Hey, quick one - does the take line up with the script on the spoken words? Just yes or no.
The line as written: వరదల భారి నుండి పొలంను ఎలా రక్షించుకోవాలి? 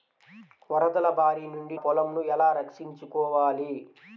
yes